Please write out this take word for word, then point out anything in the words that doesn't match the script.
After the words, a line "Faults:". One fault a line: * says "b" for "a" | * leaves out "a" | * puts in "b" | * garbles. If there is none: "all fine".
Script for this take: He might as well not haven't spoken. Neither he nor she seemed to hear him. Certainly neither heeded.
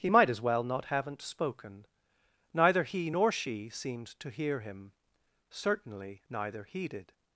He might as well not haven't spoken. Neither he nor she seemed to hear him. Certainly neither heeded.
Faults:
all fine